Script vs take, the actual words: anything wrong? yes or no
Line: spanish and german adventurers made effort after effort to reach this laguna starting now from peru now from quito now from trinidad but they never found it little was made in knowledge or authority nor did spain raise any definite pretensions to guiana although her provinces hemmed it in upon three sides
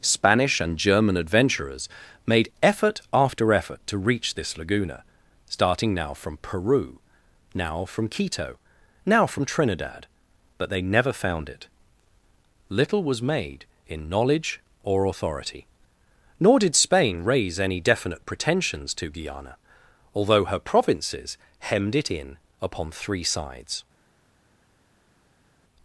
no